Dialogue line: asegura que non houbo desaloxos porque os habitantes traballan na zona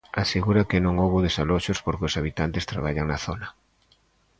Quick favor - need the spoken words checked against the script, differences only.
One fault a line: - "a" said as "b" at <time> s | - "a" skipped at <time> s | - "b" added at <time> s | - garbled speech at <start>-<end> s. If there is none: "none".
none